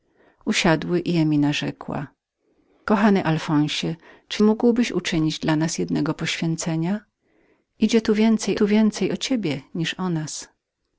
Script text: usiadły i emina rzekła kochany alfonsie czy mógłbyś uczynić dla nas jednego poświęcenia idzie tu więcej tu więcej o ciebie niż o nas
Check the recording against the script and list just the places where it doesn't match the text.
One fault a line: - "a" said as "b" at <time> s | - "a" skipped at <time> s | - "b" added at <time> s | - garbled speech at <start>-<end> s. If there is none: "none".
none